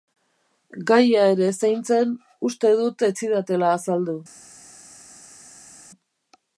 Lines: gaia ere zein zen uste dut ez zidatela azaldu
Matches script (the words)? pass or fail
pass